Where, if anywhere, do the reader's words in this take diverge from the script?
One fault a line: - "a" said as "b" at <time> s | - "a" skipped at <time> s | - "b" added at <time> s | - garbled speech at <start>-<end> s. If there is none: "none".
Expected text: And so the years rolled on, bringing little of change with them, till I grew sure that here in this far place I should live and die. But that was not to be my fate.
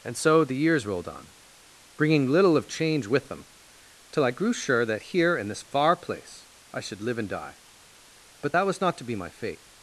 none